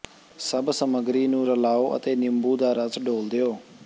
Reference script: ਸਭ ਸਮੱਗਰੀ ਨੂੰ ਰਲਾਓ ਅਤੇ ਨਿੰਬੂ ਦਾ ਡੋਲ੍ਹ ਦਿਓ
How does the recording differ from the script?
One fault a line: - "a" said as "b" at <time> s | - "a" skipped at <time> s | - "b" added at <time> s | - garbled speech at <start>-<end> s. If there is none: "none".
- "ਰਸ" added at 2.7 s